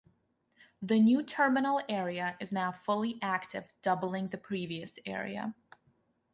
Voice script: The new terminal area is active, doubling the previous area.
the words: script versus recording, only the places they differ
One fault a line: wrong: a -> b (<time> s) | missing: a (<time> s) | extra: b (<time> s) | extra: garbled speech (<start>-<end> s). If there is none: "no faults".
extra: now fully (2.5 s)